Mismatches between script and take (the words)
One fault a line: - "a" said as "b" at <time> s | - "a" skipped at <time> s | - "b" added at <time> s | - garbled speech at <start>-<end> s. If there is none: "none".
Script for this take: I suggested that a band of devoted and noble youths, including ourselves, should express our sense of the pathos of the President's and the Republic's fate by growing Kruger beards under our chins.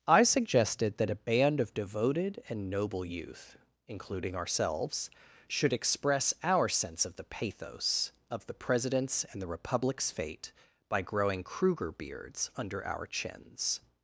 - "youths" said as "youth" at 3.0 s